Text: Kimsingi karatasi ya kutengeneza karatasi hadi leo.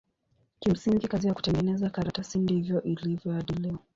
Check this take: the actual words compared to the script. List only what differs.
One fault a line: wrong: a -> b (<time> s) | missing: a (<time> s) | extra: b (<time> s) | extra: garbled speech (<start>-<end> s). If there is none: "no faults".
wrong: karatasi -> kazi (1.1 s)
extra: ndivyo ilivyo (2.4 s)